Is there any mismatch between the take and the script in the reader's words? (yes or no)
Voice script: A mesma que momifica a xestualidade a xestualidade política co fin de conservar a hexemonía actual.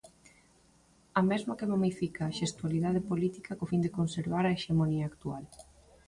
yes